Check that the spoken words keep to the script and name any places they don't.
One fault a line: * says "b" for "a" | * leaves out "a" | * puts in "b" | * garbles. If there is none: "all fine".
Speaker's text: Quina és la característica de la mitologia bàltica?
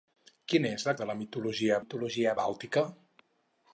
* leaves out "característica"
* puts in "mitologia"